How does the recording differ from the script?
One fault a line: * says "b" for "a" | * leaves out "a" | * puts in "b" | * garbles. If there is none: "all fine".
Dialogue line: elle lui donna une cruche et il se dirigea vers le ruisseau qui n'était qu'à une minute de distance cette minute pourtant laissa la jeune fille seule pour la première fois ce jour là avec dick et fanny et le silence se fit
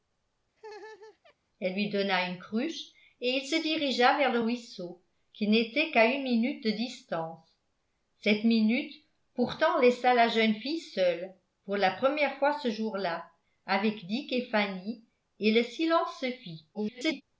* garbles